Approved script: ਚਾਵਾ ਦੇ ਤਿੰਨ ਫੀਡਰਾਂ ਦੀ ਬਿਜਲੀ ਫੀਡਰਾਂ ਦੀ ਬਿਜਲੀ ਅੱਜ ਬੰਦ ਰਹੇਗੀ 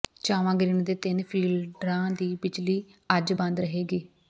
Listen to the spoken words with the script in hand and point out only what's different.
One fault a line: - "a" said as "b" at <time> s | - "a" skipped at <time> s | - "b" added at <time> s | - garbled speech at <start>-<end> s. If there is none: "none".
- "ਗਰਿੱਡ" added at 0.5 s
- "ਫੀਡਰਾਂ ਦੀ ਬਿਜਲੀ" skipped at 2.8 s